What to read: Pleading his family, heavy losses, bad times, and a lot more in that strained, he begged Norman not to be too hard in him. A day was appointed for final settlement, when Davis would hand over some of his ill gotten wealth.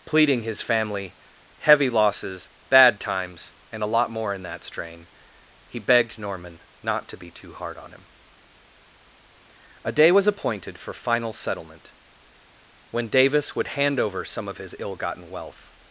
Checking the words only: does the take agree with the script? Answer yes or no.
no